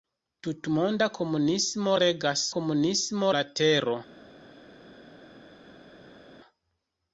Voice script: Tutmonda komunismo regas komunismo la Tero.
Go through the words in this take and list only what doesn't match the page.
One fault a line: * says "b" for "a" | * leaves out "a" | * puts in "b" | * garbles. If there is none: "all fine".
all fine